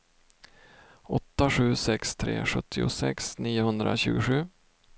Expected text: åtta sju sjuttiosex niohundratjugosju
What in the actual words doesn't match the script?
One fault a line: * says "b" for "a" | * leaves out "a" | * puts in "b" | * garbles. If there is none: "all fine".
* puts in "sex tre"